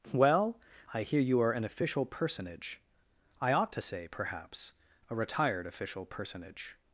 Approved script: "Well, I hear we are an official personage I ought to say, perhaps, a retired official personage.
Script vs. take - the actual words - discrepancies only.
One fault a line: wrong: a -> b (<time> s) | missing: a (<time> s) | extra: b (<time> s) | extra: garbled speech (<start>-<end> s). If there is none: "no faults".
wrong: we -> you (1.2 s)